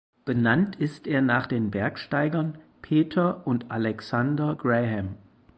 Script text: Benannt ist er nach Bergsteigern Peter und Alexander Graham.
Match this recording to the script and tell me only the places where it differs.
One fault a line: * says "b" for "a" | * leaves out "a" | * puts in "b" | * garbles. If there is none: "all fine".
* puts in "den"